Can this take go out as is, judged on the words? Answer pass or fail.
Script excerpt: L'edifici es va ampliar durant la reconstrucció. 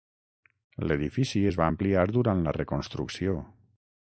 pass